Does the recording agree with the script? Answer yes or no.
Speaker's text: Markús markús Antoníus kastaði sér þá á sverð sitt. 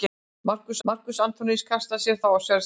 yes